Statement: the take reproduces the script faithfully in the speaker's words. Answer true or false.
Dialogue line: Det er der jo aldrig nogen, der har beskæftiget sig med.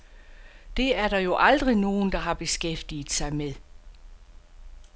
true